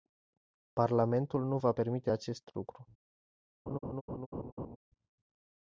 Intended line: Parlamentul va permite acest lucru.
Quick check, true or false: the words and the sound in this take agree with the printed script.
false